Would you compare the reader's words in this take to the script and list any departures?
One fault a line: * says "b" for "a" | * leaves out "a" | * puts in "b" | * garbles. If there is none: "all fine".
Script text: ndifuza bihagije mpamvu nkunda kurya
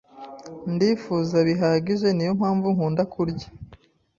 * puts in "niyo"